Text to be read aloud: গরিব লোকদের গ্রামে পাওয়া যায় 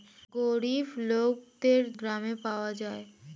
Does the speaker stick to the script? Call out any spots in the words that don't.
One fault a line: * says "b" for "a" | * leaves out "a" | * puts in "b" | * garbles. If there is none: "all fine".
all fine